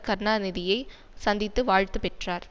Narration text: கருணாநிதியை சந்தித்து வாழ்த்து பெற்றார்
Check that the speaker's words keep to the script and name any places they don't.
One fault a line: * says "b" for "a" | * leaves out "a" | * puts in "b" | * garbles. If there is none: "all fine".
all fine